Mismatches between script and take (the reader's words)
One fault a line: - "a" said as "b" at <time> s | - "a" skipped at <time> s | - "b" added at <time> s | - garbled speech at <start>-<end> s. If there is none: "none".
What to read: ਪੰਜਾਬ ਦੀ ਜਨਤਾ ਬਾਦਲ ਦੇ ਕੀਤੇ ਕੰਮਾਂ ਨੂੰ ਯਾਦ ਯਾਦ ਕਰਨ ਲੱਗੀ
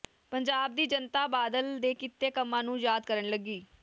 - "ਯਾਦ" skipped at 3.0 s